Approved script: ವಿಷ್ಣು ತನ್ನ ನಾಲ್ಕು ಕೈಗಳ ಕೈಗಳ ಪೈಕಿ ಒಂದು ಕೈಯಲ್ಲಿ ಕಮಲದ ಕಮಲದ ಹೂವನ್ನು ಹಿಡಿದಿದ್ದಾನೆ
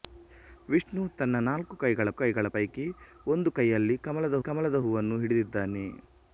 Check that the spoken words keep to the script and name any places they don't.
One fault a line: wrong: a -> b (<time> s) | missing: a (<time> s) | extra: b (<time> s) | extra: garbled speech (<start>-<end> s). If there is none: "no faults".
no faults